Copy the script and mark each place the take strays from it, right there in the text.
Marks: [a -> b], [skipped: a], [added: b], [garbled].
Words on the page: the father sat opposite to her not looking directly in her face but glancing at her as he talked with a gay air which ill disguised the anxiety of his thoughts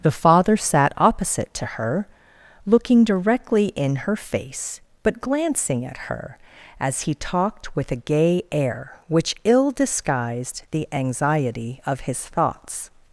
the father sat opposite to her [skipped: not] looking directly in her face but glancing at her as he talked with a gay air which ill disguised the anxiety of his thoughts